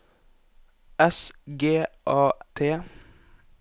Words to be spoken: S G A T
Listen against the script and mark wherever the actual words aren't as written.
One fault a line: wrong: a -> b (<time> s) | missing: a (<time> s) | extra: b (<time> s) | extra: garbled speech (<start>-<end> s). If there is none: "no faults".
no faults